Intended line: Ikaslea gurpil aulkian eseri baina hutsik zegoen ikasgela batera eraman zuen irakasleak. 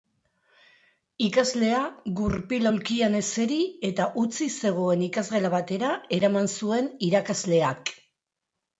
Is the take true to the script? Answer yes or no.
no